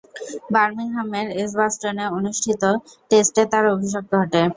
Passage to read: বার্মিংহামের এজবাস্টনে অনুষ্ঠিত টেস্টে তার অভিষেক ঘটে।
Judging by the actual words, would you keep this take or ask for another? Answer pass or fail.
pass